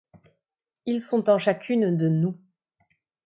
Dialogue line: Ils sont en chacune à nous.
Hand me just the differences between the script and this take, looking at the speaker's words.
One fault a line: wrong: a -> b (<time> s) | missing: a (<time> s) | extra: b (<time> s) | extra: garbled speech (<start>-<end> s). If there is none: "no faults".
wrong: à -> de (1.9 s)